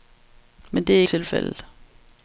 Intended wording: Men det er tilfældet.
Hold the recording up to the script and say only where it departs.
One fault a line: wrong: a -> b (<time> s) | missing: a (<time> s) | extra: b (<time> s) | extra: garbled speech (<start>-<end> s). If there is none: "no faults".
no faults